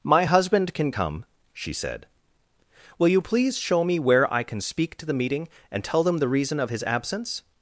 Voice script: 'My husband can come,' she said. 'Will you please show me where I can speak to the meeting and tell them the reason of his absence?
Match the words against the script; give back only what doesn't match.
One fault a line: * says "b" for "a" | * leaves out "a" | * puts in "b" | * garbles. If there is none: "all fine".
all fine